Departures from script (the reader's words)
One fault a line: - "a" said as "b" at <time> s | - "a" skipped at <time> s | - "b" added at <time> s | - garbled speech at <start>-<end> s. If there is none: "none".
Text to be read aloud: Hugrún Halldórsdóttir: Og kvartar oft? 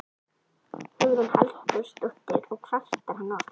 - "hann" added at 3.2 s